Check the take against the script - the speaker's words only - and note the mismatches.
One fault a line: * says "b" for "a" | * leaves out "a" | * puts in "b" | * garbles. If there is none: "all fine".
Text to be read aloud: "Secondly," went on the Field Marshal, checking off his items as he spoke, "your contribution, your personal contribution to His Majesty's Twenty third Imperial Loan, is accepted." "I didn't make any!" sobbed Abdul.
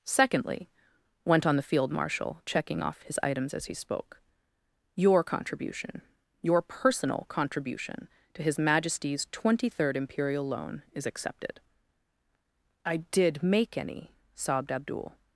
* says "did" for "didn't"